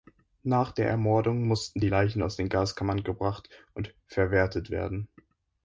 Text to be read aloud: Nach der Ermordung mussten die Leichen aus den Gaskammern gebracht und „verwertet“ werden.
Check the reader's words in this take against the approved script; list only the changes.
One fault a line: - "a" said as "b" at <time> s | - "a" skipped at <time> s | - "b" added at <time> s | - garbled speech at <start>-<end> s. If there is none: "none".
none